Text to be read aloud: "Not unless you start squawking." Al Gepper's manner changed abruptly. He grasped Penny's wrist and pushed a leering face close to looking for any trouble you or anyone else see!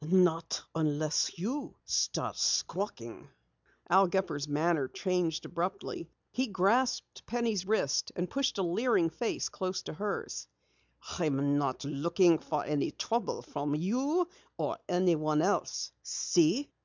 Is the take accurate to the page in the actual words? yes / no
no